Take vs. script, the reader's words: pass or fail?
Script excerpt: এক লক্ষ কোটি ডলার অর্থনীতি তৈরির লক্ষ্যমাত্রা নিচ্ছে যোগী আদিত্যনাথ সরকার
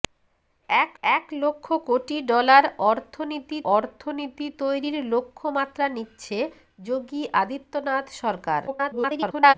fail